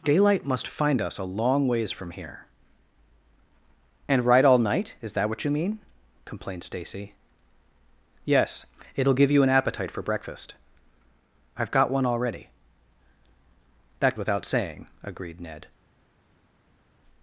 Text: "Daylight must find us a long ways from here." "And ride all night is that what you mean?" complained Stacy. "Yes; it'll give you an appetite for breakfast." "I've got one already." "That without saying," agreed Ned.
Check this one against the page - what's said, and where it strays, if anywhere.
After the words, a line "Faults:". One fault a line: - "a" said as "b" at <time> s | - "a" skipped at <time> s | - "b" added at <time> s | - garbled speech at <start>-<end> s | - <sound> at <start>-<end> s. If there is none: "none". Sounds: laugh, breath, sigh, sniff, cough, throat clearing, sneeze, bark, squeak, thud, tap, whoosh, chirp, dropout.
"Daylight must find us a long ways from here." "And ride all night is that what you mean?" complained Stacy. "Yes; it'll give you an appetite for breakfast." "I've got one already." "That without saying," agreed Ned.
Faults:
none